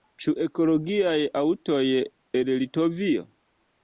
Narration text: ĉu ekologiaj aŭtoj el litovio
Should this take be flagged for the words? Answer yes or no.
no